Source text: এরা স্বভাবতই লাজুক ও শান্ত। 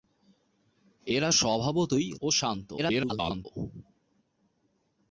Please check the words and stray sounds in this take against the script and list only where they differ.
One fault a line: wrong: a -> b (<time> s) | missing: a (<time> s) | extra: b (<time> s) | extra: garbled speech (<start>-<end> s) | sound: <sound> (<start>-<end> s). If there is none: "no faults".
missing: লাজুক (2.1 s)
extra: garbled speech (2.8-3.5 s)